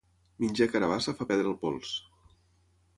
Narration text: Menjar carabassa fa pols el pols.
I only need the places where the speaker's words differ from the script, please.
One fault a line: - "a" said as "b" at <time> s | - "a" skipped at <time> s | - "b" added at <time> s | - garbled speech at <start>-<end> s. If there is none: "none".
- "pols" said as "perdre" at 1.3 s